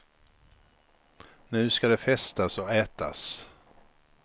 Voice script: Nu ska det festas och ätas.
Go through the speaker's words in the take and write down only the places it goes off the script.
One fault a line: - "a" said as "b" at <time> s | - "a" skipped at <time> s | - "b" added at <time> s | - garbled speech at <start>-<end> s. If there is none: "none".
none